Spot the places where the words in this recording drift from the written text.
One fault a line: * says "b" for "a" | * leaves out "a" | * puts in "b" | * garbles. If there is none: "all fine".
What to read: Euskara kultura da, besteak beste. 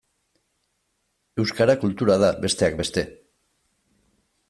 all fine